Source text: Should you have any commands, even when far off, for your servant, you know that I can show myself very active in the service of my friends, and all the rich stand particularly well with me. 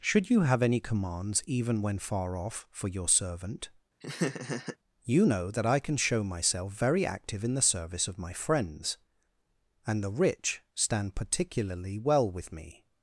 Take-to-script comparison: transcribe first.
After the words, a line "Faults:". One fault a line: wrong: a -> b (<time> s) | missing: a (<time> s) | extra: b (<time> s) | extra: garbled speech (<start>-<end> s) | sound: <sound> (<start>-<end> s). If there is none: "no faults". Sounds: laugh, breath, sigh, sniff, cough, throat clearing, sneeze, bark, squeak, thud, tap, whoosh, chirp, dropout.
Should you have any commands, even when far off, for your servant, you know that I can show myself very active in the service of my friends, and the rich stand particularly well with me.
Faults:
sound: laugh (4.0-4.8 s)
missing: all (10.0 s)